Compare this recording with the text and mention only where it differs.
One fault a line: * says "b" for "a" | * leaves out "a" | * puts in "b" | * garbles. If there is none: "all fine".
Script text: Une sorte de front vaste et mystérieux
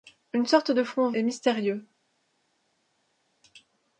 * leaves out "vaste"